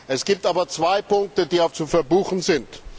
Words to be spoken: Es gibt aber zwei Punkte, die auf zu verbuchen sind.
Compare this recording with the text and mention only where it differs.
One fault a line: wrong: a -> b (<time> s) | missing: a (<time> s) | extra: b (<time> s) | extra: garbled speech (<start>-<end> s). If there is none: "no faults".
no faults